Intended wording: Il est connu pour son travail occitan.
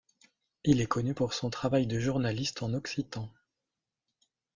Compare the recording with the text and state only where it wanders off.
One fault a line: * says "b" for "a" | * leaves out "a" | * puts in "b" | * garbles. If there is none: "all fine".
* puts in "de journaliste en"